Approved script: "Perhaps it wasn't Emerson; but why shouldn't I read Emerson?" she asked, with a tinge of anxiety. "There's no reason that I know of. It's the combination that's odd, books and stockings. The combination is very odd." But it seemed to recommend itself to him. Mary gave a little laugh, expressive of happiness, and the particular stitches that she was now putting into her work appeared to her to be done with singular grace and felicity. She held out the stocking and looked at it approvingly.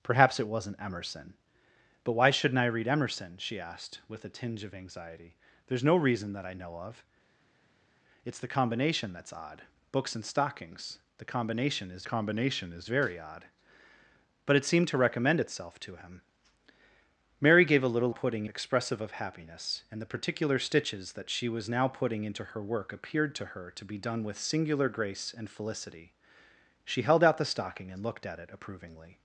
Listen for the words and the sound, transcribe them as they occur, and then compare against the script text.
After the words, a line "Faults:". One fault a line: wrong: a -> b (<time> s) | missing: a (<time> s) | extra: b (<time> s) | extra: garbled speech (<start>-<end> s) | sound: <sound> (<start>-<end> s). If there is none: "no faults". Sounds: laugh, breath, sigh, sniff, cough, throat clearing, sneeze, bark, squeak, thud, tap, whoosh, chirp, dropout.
"Perhaps it wasn't Emerson; but why shouldn't I read Emerson?" she asked, with a tinge of anxiety. "There's no reason that I know of. It's the combination that's odd, books and stockings. The combination is combination is very odd." But it seemed to recommend itself to him. Mary gave a little putting, expressive of happiness, and the particular stitches that she was now putting into her work appeared to her to be done with singular grace and felicity. She held out the stocking and looked at it approvingly.
Faults:
extra: combination is (12.0 s)
wrong: laugh -> putting (18.1 s)